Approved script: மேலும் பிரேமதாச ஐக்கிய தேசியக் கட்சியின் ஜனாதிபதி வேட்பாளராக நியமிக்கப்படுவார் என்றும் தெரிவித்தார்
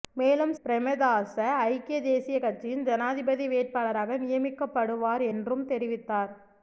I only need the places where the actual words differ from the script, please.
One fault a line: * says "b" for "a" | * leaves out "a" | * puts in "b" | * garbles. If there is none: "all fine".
all fine